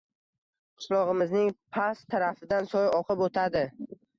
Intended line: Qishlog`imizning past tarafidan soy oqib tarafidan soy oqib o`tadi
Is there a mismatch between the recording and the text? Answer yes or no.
yes